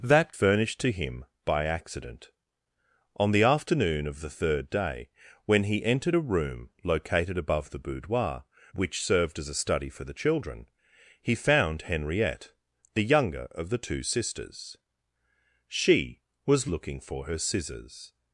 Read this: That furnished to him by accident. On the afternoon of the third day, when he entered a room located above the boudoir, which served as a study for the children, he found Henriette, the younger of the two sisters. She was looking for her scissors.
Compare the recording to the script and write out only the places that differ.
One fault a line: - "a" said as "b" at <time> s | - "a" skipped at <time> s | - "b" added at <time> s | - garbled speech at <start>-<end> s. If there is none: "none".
none